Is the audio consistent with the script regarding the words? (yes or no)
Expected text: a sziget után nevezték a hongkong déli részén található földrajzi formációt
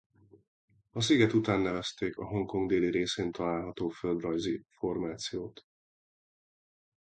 yes